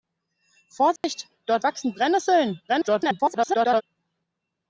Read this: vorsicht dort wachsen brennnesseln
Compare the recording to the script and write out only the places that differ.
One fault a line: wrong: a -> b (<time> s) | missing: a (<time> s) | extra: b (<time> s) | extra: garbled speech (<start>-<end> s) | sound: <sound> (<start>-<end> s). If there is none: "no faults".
sound: dropout (1.0-1.0 s)
extra: garbled speech (2.7-3.8 s)